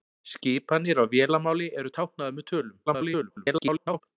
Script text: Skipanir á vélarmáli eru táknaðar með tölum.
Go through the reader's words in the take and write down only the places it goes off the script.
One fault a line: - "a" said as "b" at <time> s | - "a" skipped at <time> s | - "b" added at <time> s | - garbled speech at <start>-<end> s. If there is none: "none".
- garbled speech at 2.9-4.0 s